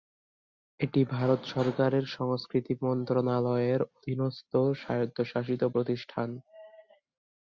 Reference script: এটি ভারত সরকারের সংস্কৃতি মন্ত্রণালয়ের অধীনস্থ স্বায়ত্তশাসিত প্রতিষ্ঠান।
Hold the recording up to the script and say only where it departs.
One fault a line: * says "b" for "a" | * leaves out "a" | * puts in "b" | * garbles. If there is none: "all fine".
all fine